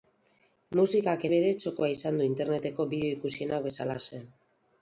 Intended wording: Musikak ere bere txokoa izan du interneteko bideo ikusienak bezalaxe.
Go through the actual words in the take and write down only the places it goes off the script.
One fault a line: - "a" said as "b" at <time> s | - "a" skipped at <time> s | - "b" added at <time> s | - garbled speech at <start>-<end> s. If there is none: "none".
- "ere" skipped at 1.2 s